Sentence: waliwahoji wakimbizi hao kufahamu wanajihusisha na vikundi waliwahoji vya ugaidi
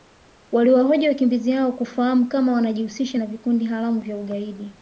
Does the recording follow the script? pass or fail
fail